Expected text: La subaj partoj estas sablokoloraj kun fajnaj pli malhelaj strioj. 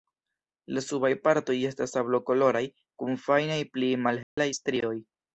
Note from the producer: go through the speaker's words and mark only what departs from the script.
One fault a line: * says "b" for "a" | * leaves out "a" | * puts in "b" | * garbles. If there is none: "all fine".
all fine